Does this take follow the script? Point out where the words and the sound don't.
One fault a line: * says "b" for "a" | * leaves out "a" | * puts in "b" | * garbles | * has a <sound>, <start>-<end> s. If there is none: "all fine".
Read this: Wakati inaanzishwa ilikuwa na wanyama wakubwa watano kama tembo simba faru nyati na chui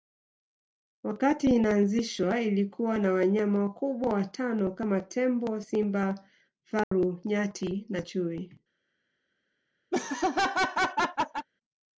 * has a dropout, 6.8-6.9 s
* has a laugh, 9.9-11.5 s